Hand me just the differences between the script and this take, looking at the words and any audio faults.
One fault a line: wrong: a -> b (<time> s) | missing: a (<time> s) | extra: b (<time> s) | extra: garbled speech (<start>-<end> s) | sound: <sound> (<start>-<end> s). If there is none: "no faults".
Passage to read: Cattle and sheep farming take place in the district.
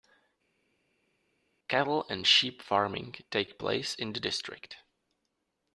no faults